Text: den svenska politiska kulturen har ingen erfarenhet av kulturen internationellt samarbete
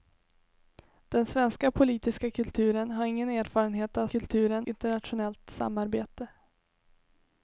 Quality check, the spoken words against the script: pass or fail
pass